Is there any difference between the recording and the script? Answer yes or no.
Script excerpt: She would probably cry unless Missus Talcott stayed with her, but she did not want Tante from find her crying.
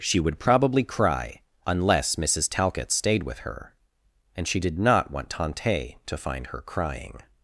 yes